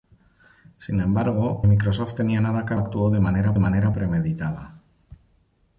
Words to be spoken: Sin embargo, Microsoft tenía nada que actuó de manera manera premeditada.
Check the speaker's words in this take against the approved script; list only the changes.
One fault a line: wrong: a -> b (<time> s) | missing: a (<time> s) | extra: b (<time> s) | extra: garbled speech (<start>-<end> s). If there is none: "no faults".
no faults